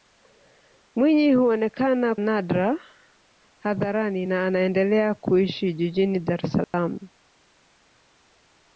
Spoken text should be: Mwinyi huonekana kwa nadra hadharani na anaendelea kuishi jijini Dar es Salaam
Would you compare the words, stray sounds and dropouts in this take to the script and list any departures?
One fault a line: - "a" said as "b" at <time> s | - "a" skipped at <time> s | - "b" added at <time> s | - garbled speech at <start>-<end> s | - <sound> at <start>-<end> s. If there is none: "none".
- "kwa" skipped at 2.1 s
- dropout at 6.6-6.7 s